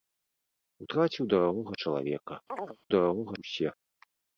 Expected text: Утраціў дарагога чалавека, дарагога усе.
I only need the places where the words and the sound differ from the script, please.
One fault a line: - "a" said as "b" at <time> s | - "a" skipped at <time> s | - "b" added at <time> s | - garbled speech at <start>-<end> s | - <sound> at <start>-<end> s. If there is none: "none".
- chirp at 2.5-2.8 s